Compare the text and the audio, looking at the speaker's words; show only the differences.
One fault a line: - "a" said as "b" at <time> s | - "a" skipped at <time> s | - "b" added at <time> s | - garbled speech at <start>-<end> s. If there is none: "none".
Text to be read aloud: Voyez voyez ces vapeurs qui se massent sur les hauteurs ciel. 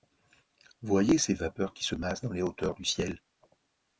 - "voyez" skipped at 1.2 s
- "sur" said as "dans" at 2.2 s
- "du" added at 2.7 s